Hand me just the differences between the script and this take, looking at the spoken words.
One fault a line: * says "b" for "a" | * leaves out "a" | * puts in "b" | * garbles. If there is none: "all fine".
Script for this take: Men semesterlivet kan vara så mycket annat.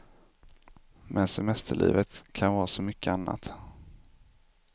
all fine